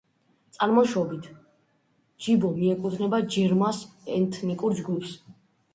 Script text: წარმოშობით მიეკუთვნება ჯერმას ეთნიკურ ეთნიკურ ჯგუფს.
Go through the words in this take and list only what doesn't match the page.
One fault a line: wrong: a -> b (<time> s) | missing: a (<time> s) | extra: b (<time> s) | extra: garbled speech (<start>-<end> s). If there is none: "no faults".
extra: ჯიბო (2.2 s)
missing: ეთნიკურ (4.8 s)